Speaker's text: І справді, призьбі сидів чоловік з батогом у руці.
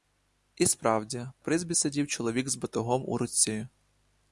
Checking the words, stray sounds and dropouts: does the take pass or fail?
pass